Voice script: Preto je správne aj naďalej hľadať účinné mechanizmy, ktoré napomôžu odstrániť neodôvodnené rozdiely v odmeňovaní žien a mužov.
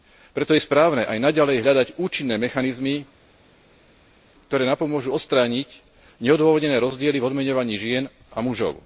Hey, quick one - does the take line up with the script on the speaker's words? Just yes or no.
yes